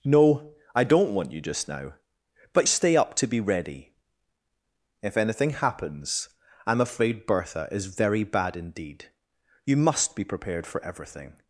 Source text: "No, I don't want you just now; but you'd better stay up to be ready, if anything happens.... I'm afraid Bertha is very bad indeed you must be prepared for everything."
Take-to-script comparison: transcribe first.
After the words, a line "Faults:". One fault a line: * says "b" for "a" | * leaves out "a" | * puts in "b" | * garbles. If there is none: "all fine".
"No, I don't want you just now; but stay up to be ready, if anything happens.... I'm afraid Bertha is very bad indeed you must be prepared for everything."
Faults:
* leaves out "you'd better"